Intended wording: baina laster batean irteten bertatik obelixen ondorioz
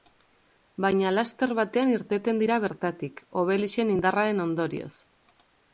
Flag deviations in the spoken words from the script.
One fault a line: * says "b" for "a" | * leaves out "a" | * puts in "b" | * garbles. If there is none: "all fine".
* puts in "dira"
* puts in "indarraren"